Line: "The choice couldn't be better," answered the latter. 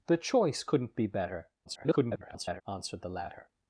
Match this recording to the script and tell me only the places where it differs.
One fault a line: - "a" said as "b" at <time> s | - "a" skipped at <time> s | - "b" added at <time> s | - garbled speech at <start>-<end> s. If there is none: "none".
- garbled speech at 1.7-2.6 s